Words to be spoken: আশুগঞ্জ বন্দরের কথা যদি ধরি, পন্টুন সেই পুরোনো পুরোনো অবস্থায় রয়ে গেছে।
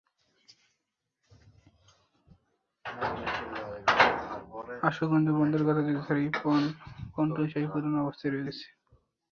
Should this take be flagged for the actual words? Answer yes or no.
yes